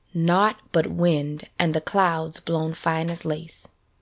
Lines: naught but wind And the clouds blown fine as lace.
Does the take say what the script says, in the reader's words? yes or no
yes